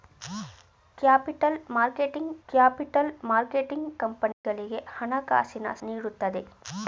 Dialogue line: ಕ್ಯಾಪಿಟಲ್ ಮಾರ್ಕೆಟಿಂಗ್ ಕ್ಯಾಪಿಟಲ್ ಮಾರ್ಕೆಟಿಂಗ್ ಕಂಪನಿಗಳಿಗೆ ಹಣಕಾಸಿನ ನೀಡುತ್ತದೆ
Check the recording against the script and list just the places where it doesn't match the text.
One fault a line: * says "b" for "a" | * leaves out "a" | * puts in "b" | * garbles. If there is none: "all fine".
all fine